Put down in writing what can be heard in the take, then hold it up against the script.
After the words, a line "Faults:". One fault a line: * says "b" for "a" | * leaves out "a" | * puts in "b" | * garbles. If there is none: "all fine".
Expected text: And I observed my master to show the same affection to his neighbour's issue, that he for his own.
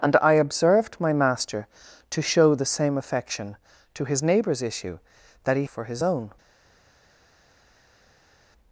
And I observed my master to show the same affection to his neighbour's issue, that he for his own.
Faults:
all fine